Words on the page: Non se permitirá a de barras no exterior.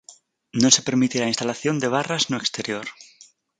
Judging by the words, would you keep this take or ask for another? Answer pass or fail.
fail